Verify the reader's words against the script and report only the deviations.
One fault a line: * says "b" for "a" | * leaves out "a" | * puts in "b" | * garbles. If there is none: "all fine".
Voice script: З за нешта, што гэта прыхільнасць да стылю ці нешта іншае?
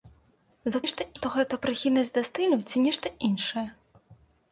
all fine